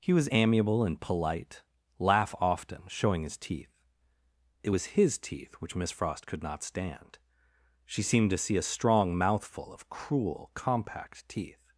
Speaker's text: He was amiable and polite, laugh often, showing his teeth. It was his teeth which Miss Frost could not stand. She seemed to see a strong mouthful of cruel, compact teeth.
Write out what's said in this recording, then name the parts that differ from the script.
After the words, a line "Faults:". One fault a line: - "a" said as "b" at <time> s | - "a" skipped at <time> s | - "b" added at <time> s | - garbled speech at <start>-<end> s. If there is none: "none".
He was amiable and polite, laugh often, showing his teeth. It was his teeth which Miss Frost could not stand. She seemed to see a strong mouthful of cruel, compact teeth.
Faults:
none